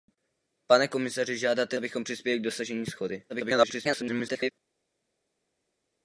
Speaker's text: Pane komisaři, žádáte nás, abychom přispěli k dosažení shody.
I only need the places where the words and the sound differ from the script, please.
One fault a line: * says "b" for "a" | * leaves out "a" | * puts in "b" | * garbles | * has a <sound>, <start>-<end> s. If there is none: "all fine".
* leaves out "nás"
* garbles